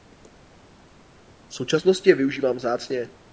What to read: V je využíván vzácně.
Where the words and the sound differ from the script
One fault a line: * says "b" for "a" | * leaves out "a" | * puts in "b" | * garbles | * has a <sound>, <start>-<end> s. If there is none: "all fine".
* puts in "současnosti"